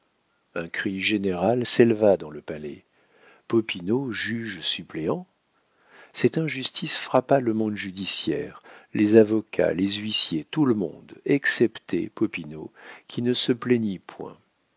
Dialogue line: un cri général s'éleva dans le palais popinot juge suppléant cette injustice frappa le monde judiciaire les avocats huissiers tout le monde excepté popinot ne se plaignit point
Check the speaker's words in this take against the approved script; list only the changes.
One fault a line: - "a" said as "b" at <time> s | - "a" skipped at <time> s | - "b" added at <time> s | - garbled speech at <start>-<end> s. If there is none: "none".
- "les" added at 9.7 s
- "qui" added at 13.1 s